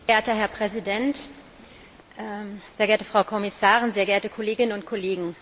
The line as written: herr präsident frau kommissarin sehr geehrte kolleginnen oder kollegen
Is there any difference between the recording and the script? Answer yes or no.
yes